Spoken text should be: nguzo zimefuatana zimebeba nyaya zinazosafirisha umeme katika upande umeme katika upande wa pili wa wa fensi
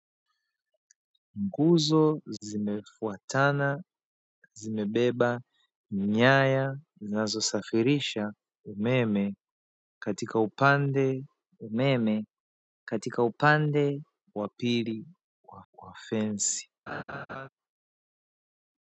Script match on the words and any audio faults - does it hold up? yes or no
no